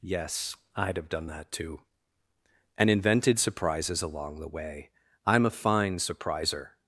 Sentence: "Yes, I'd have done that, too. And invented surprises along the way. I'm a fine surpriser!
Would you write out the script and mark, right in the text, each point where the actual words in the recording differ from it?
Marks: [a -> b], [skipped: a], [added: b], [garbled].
"Yes, I'd have done that, too. And invented surprises along the way. I'm a fine surpriser!